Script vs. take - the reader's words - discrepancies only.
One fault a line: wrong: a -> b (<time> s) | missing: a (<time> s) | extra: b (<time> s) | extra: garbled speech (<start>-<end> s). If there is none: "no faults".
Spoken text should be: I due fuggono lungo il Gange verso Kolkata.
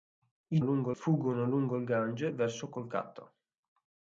wrong: due -> lungo (0.6 s)